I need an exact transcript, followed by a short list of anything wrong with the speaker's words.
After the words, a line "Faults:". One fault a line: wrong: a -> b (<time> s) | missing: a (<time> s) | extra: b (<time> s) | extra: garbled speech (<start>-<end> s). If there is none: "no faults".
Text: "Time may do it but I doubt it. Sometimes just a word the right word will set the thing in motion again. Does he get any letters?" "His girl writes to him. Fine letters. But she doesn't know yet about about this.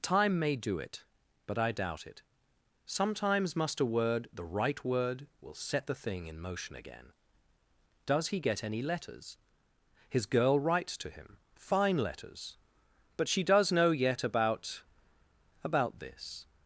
"Time may do it but I doubt it. Sometimes must a word the right word will set the thing in motion again. Does he get any letters?" "His girl writes to him. Fine letters. But she does know yet about about this.
Faults:
wrong: just -> must (3.6 s)
wrong: doesn't -> does (13.4 s)